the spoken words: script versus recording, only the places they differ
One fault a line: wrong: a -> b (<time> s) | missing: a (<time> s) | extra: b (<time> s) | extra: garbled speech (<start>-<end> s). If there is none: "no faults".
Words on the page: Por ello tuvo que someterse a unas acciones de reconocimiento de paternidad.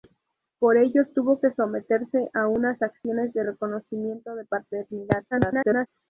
extra: garbled speech (5.3-5.9 s)